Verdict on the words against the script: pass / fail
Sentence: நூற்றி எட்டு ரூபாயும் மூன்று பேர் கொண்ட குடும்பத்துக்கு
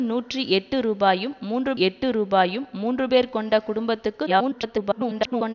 fail